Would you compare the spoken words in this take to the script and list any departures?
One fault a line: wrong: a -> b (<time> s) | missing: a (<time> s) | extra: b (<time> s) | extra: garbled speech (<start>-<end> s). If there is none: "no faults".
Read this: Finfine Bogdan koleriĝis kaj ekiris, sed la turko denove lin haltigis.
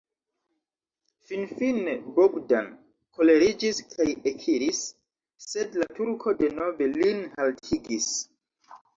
no faults